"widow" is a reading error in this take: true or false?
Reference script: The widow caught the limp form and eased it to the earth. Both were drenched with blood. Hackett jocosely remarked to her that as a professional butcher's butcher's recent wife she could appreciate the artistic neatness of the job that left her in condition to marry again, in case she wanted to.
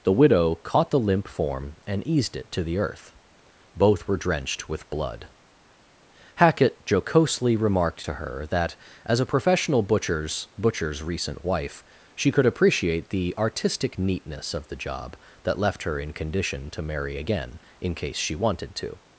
false